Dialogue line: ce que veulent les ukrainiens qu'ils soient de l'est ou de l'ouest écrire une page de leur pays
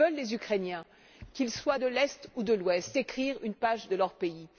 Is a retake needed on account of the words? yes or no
no